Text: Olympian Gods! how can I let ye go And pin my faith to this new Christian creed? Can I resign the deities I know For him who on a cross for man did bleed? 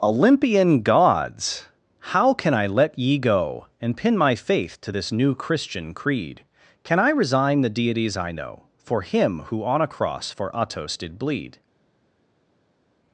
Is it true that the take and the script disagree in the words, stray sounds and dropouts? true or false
true